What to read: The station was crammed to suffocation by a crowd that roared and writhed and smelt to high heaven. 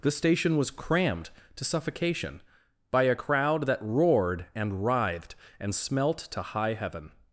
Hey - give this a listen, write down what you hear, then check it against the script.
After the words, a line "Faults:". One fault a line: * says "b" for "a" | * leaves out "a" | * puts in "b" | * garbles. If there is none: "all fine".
The station was crammed to suffocation by a crowd that roared and writhed and smelt to high heaven.
Faults:
all fine